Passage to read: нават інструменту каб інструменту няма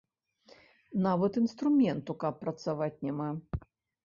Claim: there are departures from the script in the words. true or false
true